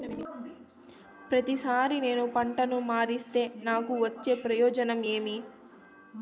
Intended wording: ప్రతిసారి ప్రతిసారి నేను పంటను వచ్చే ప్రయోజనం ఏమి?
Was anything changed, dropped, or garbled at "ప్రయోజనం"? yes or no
no